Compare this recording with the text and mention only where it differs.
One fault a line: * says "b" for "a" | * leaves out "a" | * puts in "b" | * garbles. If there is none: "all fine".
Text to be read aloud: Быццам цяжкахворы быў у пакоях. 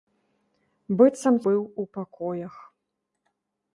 * leaves out "цяжкахворы"